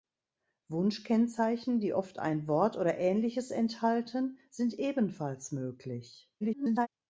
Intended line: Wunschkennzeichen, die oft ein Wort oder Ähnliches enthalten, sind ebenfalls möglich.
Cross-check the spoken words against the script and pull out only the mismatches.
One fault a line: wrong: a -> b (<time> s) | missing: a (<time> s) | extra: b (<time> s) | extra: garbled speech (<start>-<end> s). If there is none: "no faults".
extra: garbled speech (6.4-6.9 s)